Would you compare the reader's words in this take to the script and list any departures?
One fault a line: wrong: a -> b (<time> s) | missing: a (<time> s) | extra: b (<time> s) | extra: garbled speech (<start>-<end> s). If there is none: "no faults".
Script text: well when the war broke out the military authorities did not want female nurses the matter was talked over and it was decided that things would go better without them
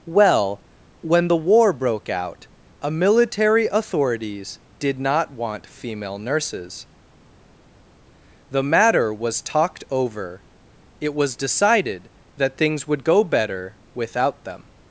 wrong: the -> a (2.8 s)
missing: and (10.4 s)